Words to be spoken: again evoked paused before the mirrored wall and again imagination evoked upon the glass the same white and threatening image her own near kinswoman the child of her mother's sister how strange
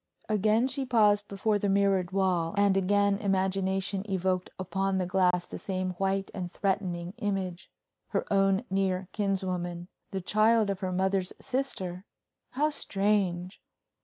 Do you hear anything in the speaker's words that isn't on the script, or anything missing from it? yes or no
yes